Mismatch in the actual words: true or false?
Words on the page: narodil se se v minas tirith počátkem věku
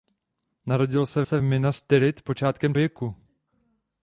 false